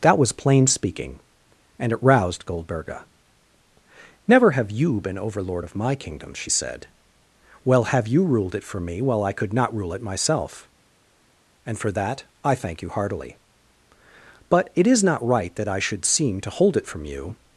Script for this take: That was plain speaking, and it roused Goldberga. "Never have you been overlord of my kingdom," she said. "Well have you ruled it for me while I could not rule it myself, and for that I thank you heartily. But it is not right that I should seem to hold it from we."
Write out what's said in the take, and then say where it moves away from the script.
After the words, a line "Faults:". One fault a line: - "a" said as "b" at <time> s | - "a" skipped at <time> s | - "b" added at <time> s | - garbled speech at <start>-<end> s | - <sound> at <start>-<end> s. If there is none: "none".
That was plain speaking, and it roused Goldberga. "Never have you been overlord of my kingdom," she said. "Well have you ruled it for me while I could not rule it myself, and for that I thank you heartily. But it is not right that I should seem to hold it from you."
Faults:
- "we" said as "you" at 17.0 s